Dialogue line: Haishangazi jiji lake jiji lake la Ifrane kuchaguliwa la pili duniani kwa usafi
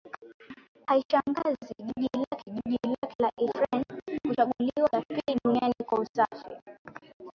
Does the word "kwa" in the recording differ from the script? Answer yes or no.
no